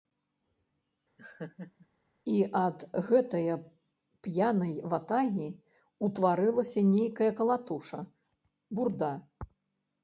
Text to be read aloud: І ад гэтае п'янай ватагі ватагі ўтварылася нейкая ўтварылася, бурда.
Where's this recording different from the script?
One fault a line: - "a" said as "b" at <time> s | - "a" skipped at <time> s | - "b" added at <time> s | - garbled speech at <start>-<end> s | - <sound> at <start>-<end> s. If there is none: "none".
- laugh at 1.2-1.9 s
- "ватагі" skipped at 5.5 s
- "ўтварылася" said as "калатуша" at 7.4 s